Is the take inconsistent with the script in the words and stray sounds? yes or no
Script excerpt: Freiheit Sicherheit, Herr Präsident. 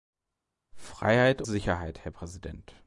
no